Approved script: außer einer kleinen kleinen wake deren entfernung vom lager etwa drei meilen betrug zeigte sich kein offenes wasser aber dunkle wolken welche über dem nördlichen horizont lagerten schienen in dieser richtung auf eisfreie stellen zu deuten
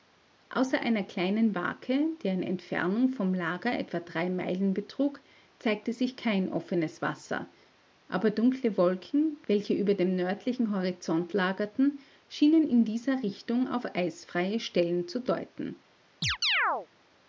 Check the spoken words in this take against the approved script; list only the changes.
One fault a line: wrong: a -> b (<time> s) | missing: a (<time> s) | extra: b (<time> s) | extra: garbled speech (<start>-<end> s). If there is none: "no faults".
missing: kleinen (1.5 s)